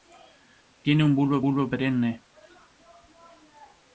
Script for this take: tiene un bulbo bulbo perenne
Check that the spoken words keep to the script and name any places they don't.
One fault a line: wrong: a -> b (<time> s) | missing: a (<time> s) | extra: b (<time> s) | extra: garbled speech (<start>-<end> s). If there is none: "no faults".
no faults